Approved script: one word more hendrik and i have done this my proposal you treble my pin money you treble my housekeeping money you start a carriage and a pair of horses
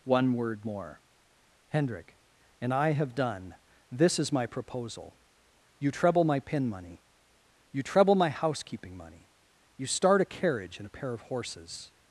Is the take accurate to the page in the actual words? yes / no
no